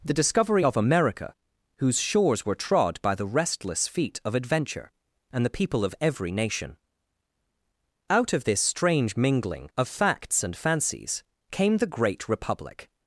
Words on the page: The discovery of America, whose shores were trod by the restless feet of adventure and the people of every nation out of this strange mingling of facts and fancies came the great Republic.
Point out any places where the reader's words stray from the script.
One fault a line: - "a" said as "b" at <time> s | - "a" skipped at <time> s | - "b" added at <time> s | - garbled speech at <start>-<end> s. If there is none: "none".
none